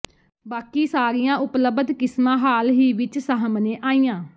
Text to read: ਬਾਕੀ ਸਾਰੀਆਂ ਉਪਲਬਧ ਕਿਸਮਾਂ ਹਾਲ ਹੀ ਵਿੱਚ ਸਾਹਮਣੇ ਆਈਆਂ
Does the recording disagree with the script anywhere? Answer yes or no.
no